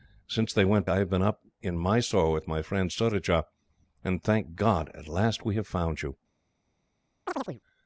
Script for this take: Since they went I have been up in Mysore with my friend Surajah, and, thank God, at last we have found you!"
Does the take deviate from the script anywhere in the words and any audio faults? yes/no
yes